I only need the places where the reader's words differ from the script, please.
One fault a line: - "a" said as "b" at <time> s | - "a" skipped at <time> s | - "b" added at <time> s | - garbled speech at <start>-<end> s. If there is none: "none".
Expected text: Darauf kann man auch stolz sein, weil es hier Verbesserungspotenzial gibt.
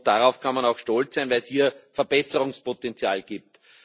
none